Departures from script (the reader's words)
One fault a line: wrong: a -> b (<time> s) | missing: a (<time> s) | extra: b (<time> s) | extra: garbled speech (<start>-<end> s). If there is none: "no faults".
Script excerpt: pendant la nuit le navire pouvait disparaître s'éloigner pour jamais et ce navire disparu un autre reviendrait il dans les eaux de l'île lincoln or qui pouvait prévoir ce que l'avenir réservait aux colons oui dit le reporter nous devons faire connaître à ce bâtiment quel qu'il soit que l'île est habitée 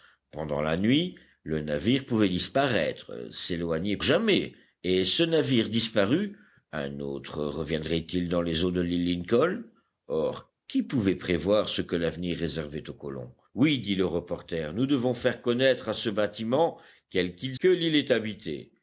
missing: pour (4.0 s)
missing: soit (17.6 s)